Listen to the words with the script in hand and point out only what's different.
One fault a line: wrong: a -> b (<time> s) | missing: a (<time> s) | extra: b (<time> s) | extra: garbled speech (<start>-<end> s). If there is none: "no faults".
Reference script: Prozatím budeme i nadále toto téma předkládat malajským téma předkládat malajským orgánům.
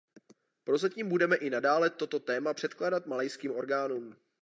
missing: téma předkládat malajským (3.5 s)